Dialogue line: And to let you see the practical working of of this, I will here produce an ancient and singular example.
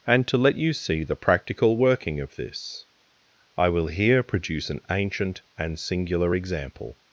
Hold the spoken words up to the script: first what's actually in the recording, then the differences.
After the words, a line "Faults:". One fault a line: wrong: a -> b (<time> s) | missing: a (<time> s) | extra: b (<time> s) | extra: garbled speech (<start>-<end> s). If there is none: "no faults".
And to let you see the practical working of this, I will here produce an ancient and singular example.
Faults:
missing: of (2.4 s)